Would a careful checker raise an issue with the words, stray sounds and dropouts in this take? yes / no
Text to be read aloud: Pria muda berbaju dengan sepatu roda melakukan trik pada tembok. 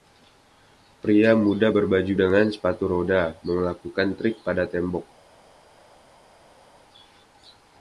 no